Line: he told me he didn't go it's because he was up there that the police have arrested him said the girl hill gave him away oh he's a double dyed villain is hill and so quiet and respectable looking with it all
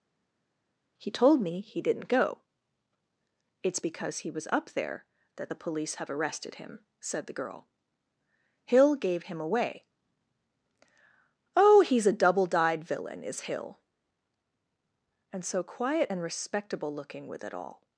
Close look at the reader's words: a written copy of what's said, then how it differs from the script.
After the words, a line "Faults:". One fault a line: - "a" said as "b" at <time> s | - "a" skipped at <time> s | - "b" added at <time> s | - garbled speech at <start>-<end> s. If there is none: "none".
he told me he didn't go it's because he was up there that the police have arrested him said the girl hill gave him away oh he's a double dyed villain is hill and so quiet and respectable looking with it all
Faults:
none